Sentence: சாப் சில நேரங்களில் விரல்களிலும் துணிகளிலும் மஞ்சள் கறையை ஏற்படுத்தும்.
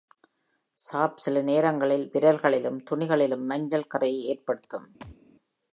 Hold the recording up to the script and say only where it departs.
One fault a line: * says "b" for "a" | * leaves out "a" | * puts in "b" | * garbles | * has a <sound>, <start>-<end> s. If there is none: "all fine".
* has a thud, 5.0-5.2 s